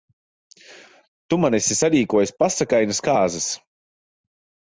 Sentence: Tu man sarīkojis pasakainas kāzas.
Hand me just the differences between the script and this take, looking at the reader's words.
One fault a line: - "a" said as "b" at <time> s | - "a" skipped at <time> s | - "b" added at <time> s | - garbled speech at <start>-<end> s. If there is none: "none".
- "esi" added at 1.6 s